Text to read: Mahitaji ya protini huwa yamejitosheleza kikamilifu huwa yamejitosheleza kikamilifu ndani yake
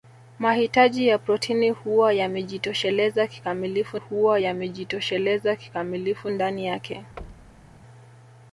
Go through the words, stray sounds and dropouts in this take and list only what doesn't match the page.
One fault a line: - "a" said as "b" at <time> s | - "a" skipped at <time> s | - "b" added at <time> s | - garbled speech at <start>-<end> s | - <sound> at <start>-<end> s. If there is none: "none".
- thud at 7.2-7.7 s